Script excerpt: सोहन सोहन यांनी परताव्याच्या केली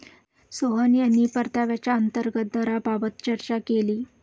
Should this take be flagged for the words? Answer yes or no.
yes